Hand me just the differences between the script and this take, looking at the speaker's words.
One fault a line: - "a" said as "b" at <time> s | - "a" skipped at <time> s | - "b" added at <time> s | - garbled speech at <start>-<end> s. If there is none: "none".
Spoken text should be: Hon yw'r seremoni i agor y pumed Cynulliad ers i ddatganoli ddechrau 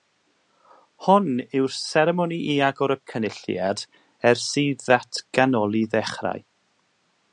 - "pumed" skipped at 3.0 s